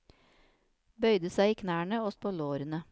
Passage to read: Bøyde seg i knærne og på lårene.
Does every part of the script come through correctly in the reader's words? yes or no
yes